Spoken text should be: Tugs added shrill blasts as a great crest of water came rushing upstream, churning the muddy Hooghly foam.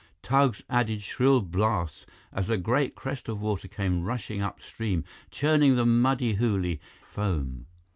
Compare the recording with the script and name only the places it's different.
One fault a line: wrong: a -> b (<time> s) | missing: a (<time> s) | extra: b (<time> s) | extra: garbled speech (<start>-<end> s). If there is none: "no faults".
no faults